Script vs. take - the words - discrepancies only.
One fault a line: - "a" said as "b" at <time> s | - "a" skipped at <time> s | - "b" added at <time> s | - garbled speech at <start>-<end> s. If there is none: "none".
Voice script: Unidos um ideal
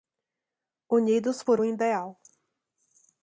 - "por" added at 1.4 s